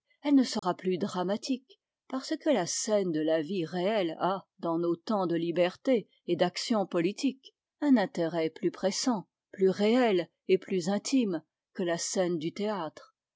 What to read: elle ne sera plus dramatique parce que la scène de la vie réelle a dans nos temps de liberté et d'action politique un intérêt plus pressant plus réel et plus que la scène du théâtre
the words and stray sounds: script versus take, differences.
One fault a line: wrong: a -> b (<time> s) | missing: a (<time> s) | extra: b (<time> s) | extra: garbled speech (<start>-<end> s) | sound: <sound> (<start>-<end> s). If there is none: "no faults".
sound: dropout (0.6-0.6 s)
extra: intime (10.9 s)